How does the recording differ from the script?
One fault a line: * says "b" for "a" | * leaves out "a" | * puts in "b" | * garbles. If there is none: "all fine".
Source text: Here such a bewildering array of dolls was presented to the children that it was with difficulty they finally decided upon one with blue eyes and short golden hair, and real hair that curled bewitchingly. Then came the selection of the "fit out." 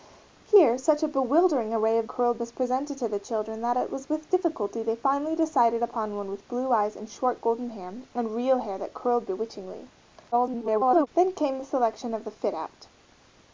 * says "curled" for "dolls"
* garbles